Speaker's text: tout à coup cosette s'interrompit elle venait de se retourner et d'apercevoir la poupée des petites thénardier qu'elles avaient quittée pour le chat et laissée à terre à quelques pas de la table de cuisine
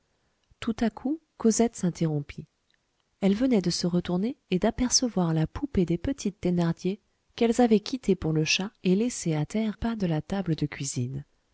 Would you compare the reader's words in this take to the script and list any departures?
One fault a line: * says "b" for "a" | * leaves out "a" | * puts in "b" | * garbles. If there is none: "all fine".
* leaves out "à quelques"